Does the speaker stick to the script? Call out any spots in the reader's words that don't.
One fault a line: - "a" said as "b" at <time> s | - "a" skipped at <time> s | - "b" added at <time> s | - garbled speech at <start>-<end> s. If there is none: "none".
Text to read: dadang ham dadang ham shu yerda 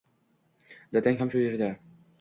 - "dadang ham" skipped at 1.3 s